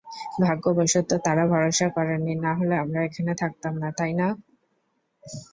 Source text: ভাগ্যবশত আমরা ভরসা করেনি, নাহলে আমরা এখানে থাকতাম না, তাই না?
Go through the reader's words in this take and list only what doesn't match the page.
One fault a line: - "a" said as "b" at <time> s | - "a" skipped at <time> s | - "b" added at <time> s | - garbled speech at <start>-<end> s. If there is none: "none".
- "আমরা" said as "তারা" at 1.2 s